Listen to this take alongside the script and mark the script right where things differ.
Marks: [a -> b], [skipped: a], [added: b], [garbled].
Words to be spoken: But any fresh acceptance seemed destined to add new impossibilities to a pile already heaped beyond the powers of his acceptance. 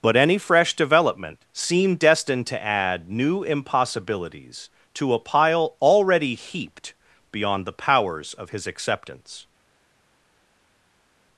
But any fresh [acceptance -> development] seemed destined to add new impossibilities to a pile already heaped beyond the powers of his acceptance.